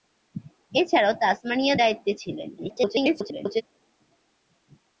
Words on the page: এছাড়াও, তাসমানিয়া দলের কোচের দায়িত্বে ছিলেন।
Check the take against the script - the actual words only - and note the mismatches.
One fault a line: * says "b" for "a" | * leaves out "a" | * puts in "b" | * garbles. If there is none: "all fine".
* leaves out "দলের কোচের"
* garbles